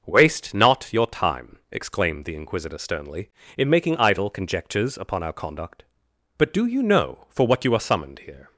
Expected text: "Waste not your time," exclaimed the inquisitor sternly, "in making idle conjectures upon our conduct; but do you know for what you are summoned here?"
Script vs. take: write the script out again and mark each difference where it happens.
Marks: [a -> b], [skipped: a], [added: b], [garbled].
"Waste not your time," exclaimed the inquisitor sternly, "in making idle conjectures upon our conduct; but do you know for what you are summoned here?"